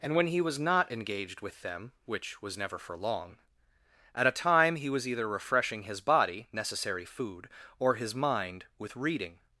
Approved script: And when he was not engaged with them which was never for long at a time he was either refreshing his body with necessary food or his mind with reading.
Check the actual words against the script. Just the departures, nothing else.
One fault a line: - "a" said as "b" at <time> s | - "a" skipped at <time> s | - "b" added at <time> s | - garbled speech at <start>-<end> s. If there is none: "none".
- "with" skipped at 6.5 s